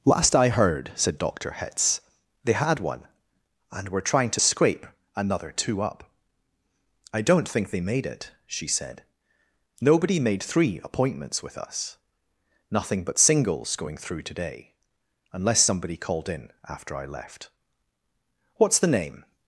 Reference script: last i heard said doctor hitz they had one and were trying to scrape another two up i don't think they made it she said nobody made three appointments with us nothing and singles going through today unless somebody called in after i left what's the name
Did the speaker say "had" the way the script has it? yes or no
yes